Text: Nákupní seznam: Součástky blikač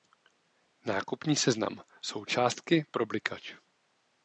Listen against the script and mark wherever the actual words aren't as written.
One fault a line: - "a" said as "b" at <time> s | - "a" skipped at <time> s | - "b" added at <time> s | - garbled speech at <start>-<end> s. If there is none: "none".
- "pro" added at 2.9 s